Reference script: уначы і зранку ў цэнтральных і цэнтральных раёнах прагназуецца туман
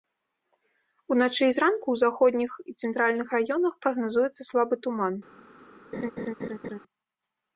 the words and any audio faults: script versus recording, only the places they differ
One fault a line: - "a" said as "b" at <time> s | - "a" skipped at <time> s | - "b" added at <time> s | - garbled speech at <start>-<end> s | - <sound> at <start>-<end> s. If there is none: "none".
- "цэнтральных" said as "заходніх" at 2.0 s
- "слабы" added at 4.5 s
- laugh at 5.9-6.8 s